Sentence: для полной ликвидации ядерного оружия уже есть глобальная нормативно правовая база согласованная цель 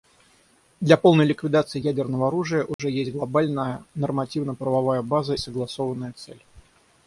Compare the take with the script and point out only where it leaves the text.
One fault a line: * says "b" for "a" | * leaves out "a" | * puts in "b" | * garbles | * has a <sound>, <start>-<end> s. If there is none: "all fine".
* has a dropout, 2.7-2.8 s